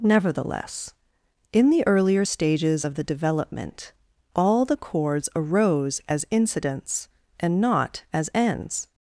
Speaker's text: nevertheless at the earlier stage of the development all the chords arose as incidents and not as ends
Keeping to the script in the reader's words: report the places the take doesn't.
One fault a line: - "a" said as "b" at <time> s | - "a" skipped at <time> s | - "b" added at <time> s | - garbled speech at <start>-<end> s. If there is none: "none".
- "at" said as "in" at 1.5 s
- "stage" said as "stages" at 2.2 s